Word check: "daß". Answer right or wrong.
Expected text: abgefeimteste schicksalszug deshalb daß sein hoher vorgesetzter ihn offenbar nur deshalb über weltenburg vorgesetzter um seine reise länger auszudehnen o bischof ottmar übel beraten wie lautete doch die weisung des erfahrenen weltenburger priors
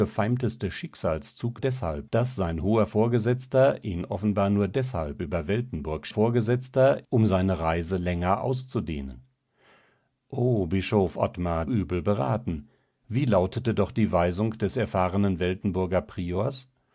right